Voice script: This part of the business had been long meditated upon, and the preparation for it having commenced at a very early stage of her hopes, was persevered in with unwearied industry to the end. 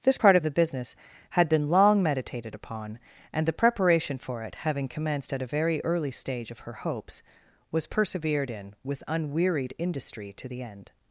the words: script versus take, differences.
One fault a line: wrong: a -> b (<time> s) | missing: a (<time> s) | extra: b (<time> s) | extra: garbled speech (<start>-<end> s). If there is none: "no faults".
no faults